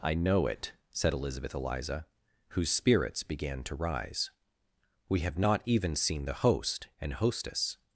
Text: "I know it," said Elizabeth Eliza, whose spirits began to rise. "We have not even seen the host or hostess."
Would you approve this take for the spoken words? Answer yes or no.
no